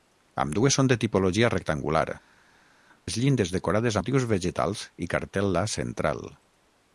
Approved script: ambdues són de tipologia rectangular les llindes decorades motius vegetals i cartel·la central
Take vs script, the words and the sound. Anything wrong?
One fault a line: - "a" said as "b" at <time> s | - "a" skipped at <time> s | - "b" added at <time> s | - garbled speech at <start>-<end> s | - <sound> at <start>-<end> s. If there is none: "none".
none